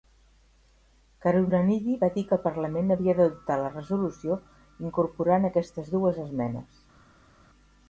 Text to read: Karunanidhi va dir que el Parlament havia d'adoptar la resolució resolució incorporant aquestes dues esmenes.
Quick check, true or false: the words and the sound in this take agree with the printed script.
false